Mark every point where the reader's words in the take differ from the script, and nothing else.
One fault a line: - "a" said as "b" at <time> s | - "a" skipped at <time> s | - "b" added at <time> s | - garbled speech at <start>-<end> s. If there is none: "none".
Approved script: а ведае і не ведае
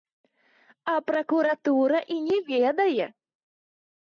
- "ведае" said as "пракуратура" at 1.1 s